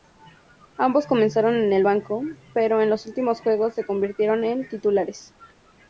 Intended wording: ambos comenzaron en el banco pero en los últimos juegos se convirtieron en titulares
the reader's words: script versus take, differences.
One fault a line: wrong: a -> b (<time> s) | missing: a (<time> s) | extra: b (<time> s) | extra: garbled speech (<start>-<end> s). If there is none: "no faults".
no faults